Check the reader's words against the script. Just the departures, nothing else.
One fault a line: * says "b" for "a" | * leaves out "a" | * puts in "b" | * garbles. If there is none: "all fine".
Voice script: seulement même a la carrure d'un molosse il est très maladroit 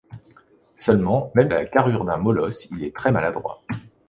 all fine